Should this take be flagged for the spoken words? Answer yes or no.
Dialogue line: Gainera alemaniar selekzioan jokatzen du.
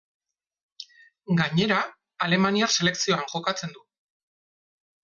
no